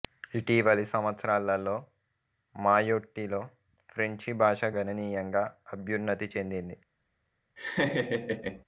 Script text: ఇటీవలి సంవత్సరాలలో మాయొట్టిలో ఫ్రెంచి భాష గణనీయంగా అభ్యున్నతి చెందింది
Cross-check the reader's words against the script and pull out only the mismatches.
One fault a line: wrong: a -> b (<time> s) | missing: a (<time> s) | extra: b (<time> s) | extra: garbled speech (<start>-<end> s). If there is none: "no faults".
no faults